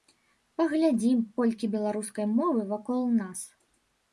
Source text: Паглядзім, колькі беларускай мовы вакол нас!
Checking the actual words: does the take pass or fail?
pass